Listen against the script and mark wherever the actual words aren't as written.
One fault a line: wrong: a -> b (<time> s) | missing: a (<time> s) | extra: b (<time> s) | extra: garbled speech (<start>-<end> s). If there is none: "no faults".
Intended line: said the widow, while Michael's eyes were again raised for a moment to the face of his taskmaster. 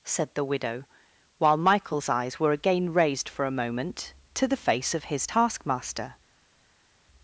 no faults